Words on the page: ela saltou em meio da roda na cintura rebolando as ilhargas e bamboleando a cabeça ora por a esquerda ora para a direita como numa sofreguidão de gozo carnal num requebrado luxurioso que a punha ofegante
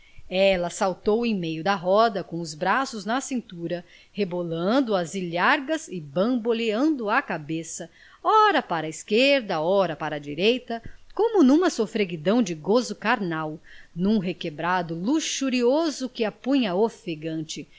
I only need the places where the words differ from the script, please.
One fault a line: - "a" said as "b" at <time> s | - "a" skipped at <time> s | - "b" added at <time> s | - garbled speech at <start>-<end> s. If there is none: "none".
- "com os braços" added at 2.2 s
- "por" said as "para" at 8.6 s